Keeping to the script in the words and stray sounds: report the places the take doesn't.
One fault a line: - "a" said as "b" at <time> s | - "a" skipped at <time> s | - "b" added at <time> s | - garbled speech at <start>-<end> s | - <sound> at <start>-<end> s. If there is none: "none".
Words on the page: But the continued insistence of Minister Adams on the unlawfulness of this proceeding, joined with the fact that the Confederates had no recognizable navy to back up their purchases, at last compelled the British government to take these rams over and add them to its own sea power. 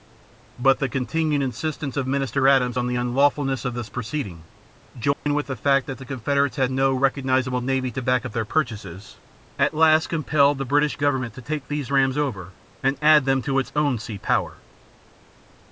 - dropout at 5.1-5.3 s